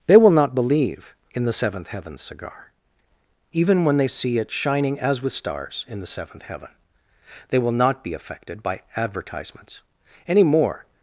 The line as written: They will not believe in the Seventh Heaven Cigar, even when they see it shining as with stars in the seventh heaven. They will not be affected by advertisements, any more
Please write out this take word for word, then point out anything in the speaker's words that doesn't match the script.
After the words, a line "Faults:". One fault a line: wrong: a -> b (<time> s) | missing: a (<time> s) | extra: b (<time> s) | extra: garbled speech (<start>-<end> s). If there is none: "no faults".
They will not believe in the Seventh Heaven Cigar, even when they see it shining as with stars in the seventh heaven. They will not be affected by advertisements, any more
Faults:
no faults